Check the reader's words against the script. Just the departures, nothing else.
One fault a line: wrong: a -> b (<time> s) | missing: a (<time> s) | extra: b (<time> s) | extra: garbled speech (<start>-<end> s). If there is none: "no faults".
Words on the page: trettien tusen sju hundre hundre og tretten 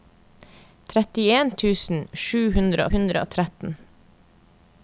no faults